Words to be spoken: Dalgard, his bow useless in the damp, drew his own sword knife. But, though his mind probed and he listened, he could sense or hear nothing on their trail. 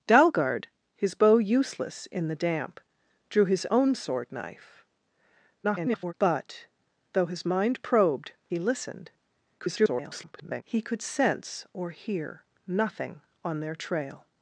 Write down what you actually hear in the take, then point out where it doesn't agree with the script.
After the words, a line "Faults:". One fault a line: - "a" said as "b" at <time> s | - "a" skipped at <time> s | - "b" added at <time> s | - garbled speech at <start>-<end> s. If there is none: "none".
Dalgard, his bow useless in the damp, drew his own sword knife. [garbled] But, though his mind probed he listened, [garbled] he could sense or hear nothing on their trail.
Faults:
- garbled speech at 5.6-6.1 s
- "and" skipped at 8.3 s
- garbled speech at 9.6-10.6 s